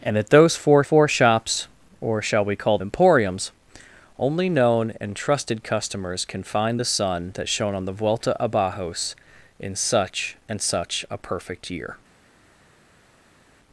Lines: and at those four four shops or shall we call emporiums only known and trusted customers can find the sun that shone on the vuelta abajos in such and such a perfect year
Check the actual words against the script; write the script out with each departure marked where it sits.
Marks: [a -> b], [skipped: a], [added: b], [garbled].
and at those four four shops or shall we call emporiums only known and trusted customers can find the sun that shone on the vuelta abajos in such and such a perfect year